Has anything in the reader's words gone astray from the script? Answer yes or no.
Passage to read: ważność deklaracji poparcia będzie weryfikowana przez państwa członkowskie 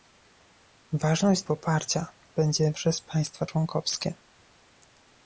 yes